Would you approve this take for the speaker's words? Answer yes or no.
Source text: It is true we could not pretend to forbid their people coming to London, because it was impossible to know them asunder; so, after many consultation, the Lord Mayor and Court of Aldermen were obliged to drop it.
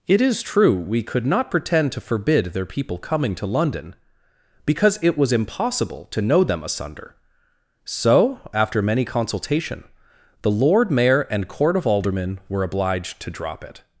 yes